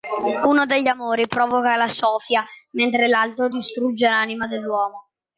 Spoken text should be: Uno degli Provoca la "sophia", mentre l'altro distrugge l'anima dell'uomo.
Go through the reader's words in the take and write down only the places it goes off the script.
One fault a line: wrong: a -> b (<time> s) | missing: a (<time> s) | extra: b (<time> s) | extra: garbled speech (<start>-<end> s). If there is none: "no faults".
extra: Amori (0.9 s)